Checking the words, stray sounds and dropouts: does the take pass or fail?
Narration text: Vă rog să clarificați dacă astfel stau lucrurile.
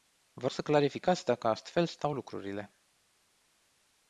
fail